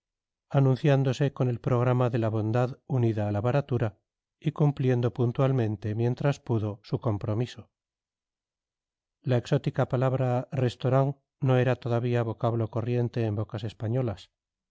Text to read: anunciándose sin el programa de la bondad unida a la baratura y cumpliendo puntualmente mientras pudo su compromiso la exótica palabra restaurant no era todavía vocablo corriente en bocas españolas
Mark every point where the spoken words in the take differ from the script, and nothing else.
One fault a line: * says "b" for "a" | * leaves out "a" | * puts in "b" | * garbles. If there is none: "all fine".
* says "con" for "sin"